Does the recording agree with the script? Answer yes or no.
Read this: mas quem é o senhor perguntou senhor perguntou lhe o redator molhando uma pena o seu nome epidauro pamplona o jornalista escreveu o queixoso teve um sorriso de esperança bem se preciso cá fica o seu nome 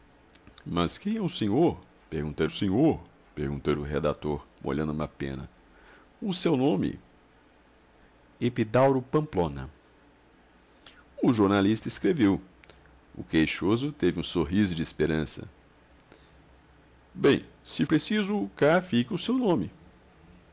yes